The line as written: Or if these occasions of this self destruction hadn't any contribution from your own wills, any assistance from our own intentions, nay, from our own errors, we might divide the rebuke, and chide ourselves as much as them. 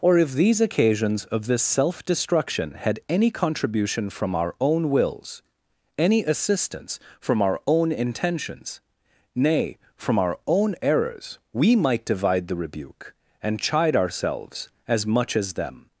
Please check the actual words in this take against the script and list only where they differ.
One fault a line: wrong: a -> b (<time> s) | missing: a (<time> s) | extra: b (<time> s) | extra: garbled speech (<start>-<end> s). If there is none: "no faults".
wrong: hadn't -> had (2.7 s)
wrong: your -> our (4.3 s)